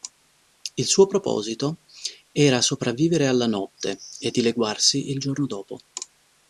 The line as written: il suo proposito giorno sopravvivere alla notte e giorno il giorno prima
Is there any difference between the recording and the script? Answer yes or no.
yes